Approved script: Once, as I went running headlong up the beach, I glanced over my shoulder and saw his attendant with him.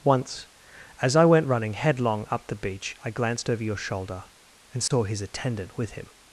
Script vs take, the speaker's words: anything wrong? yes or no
yes